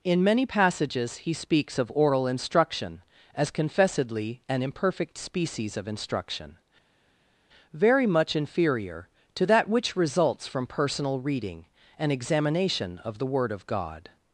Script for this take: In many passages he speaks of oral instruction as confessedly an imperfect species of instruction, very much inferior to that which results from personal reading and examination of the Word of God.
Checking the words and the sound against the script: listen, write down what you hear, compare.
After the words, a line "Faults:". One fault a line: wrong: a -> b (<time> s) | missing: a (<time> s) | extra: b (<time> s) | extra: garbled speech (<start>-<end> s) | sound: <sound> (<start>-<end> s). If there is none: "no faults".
In many passages he speaks of oral instruction as confessedly an imperfect species of instruction, very much inferior to that which results from personal reading and examination of the Word of God.
Faults:
no faults